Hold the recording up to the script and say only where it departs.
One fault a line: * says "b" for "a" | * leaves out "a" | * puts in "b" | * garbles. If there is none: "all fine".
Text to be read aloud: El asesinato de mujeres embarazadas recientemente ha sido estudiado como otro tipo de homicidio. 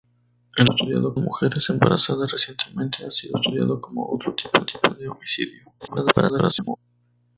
* says "estudiado" for "asesinato"
* puts in "tipo"
* garbles